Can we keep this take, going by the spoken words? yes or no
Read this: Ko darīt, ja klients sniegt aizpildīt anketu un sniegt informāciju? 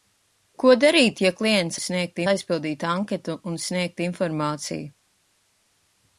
yes